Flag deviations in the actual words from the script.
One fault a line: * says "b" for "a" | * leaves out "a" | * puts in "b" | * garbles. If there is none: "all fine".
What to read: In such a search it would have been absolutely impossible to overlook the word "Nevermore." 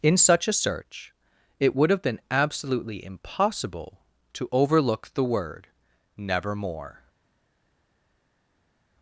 all fine